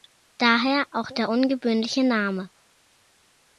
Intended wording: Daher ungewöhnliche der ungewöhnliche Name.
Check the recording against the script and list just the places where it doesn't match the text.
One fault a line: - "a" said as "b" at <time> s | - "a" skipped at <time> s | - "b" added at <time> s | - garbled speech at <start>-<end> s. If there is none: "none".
- "ungewöhnliche" said as "auch" at 0.9 s